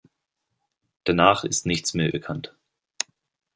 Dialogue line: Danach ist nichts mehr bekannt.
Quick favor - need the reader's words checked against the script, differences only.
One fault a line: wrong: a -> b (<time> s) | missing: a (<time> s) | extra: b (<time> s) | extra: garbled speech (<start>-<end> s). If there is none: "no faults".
no faults